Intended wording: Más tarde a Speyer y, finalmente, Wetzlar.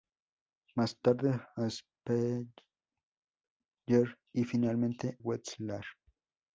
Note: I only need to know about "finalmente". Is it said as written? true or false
true